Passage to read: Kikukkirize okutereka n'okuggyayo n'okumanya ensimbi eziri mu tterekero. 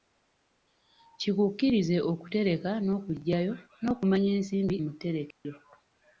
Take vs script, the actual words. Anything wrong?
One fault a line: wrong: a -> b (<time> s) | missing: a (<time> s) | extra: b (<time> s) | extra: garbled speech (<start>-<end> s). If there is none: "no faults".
missing: eziri (4.8 s)